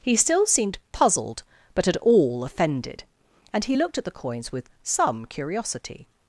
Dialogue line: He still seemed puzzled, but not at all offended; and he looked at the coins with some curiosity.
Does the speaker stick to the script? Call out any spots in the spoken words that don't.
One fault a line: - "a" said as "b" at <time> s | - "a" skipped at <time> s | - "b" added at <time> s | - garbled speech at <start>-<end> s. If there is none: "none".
- "not" skipped at 1.9 s